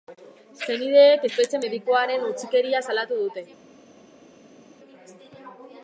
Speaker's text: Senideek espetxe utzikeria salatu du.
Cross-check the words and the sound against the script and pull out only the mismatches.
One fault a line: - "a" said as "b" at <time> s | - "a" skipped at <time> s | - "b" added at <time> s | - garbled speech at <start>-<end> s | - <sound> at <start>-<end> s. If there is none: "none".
- "medikuaren" added at 1.6 s
- "du" said as "dute" at 3.2 s